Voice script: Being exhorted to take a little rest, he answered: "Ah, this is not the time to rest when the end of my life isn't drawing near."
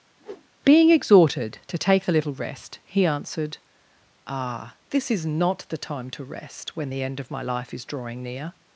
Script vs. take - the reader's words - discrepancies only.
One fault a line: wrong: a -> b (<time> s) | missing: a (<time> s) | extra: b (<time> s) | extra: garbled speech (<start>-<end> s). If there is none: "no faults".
wrong: isn't -> is (7.7 s)